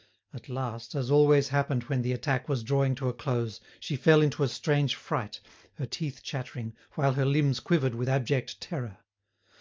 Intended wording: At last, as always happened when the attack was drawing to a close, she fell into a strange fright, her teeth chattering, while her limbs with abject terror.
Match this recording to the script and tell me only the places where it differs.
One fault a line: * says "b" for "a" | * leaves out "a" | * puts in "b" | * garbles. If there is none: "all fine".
* puts in "quivered"